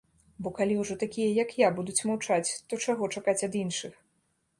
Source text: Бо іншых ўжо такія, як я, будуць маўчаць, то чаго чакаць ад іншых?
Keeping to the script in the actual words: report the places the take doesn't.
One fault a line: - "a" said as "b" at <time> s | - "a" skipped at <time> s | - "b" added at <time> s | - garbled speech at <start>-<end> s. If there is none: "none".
- "іншых" said as "калі" at 0.6 s